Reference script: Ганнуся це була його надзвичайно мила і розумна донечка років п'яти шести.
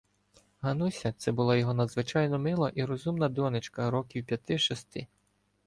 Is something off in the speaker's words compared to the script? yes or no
no